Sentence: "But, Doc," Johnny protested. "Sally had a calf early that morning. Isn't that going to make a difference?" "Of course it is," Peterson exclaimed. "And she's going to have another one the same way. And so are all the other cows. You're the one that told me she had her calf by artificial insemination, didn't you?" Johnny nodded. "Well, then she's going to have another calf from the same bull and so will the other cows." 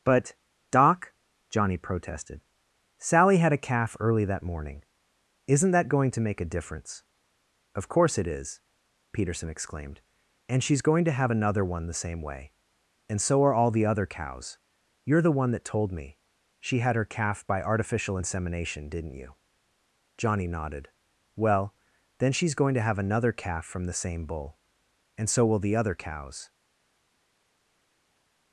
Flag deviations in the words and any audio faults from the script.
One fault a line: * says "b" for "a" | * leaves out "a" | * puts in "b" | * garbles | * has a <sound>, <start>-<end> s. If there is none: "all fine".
all fine